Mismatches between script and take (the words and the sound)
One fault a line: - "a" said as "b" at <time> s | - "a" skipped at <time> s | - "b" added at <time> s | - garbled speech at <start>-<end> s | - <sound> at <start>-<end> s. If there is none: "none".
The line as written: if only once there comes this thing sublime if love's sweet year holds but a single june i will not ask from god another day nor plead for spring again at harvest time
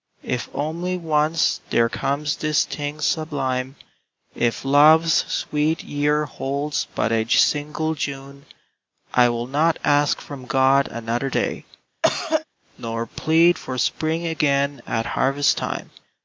- cough at 12.0-12.4 s